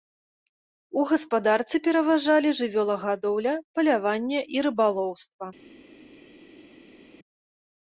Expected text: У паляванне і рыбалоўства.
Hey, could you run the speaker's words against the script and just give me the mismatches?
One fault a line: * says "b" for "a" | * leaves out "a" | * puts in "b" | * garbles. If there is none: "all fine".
* puts in "гаспадарцы пераважалі жывёлагадоўля"